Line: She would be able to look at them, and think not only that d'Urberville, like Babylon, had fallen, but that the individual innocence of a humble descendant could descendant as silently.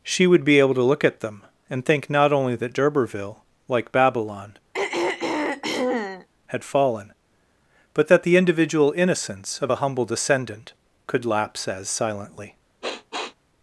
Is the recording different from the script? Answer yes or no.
yes